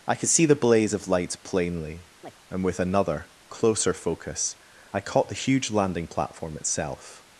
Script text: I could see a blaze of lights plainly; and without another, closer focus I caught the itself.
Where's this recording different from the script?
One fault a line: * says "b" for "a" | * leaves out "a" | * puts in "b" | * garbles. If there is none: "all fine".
* says "the" for "a"
* says "with" for "without"
* puts in "huge landing platform"